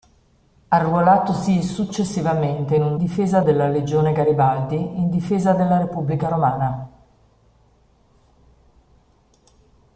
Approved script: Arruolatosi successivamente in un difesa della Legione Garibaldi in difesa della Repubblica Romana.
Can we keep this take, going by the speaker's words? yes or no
yes